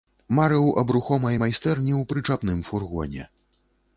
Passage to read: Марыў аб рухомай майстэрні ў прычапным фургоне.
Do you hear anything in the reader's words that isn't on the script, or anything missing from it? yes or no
no